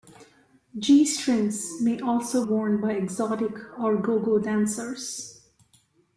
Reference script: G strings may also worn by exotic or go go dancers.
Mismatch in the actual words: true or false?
false